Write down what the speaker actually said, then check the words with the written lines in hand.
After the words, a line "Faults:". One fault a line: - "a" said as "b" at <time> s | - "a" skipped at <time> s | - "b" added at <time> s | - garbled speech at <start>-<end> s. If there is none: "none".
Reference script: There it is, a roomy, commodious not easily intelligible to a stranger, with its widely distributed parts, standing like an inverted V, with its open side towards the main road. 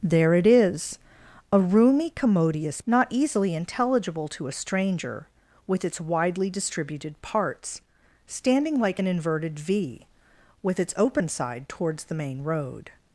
There it is, a roomy, commodious not easily intelligible to a stranger, with its widely distributed parts, standing like an inverted V, with its open side towards the main road.
Faults:
none